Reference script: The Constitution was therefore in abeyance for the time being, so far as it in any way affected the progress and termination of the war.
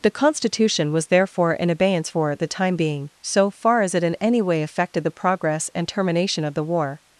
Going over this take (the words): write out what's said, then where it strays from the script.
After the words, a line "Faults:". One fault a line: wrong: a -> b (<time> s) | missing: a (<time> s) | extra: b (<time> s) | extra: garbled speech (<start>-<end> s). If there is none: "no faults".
The Constitution was therefore in abeyance for the time being, so far as it in any way affected the progress and termination of the war.
Faults:
no faults